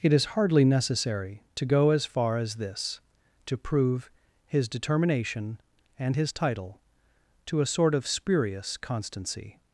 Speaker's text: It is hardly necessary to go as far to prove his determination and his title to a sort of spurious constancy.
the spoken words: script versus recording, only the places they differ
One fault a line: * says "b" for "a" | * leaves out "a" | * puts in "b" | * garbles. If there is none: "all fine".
* puts in "as this"